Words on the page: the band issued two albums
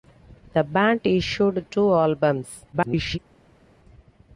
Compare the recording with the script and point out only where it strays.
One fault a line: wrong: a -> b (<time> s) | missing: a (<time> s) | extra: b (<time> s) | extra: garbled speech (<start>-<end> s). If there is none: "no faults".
extra: garbled speech (2.7-3.2 s)